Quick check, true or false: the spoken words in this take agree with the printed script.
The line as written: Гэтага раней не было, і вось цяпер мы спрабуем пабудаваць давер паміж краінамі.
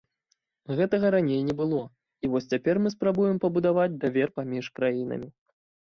true